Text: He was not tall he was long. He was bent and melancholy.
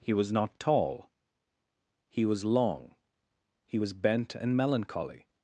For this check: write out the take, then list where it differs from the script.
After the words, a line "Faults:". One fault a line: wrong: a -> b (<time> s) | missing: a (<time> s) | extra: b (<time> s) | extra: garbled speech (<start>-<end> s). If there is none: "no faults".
He was not tall he was long. He was bent and melancholy.
Faults:
no faults